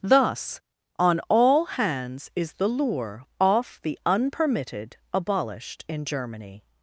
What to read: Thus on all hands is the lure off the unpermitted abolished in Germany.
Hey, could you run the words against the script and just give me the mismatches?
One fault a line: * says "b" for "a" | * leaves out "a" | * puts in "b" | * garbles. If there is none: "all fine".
all fine